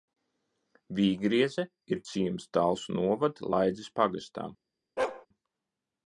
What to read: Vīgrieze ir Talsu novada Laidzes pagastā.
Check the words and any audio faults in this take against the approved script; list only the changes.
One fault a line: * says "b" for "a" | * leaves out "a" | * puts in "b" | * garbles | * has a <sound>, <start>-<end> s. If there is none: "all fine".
* puts in "ciems"
* has a bark, 5.0-5.3 s